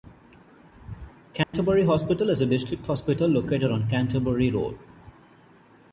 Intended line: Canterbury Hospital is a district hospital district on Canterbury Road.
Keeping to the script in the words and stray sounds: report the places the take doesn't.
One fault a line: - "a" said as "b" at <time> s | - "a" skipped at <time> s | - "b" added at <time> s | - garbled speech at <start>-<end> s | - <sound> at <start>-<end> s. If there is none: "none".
- dropout at 1.4-1.5 s
- "district" said as "located" at 3.3 s